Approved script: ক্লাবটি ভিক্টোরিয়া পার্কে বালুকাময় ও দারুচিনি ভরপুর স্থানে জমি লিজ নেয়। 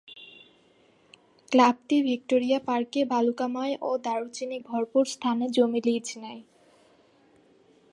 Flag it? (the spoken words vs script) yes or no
no